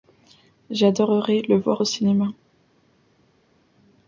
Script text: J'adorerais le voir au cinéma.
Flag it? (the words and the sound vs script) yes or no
no